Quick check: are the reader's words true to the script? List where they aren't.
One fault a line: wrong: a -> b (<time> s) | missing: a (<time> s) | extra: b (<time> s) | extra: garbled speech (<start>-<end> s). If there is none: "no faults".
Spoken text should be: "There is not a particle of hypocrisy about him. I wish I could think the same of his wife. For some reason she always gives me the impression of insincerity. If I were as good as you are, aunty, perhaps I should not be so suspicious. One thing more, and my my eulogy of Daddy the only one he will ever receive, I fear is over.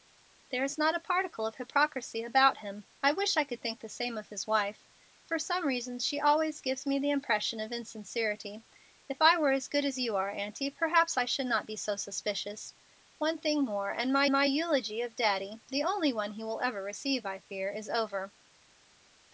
no faults